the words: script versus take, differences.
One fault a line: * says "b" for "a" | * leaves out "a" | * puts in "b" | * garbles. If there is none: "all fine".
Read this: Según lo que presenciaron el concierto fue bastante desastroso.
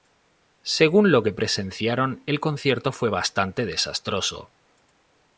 all fine